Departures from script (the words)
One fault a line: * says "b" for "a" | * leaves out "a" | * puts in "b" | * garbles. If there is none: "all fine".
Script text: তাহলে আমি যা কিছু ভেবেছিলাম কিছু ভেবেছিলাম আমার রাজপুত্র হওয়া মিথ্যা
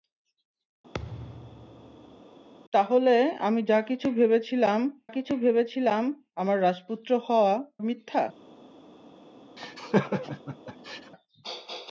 all fine